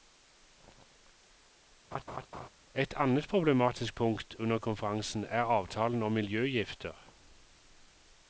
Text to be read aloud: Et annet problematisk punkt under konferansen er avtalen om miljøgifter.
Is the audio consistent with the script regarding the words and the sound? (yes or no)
no